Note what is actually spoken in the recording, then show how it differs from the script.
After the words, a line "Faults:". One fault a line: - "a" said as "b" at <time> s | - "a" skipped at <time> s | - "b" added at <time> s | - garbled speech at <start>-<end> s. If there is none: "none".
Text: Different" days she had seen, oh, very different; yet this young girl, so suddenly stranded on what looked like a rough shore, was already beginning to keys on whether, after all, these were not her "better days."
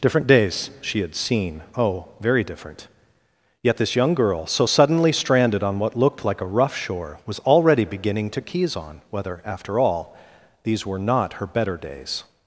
Different" days she had seen, oh, very different; yet this young girl, so suddenly stranded on what looked like a rough shore, was already beginning to keys on whether, after all, these were not her "better days."
Faults:
none